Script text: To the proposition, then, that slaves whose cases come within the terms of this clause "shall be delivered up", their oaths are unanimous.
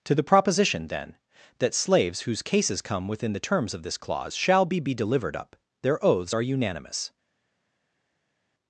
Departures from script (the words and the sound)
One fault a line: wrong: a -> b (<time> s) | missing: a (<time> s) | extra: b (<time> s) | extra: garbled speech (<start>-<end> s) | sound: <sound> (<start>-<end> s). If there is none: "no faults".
extra: be (4.8 s)